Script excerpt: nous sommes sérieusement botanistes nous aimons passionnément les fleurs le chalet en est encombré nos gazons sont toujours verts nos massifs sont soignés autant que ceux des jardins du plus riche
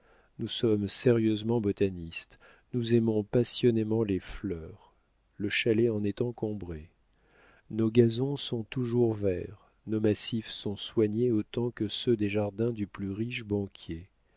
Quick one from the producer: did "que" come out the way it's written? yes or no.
yes